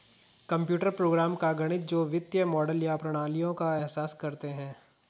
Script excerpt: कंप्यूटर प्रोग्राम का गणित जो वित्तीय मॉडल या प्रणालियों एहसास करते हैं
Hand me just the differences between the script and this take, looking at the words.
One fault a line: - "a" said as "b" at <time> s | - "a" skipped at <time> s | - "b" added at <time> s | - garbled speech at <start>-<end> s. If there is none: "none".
- "का" added at 3.5 s